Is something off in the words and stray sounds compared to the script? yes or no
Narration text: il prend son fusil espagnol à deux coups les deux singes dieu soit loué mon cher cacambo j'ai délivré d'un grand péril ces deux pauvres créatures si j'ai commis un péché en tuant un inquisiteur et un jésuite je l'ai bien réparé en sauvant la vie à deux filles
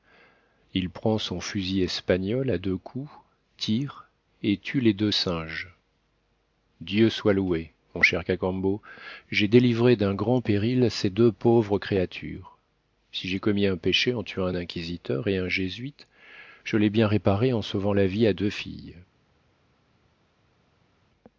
yes